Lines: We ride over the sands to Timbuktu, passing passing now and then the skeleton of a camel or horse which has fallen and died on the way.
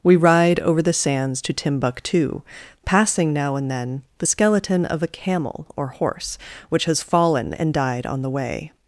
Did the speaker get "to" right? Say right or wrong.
right